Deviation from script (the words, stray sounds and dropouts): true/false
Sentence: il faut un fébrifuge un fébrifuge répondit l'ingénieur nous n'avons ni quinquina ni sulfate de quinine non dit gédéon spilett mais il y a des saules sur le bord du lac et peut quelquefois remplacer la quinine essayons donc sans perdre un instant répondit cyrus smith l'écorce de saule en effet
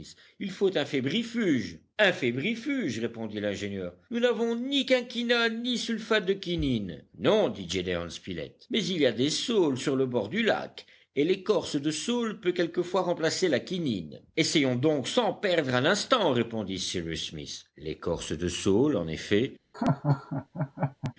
true